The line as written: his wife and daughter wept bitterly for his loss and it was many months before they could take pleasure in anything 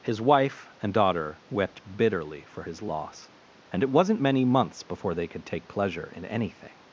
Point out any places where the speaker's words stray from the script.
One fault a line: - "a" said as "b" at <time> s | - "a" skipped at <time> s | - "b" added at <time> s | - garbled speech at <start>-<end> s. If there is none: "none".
- "was" said as "wasn't" at 3.9 s